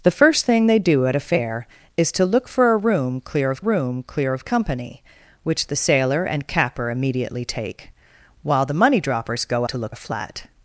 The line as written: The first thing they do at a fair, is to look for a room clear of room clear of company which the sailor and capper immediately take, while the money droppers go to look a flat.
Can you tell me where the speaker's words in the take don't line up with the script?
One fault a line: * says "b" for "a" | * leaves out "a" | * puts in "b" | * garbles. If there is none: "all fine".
all fine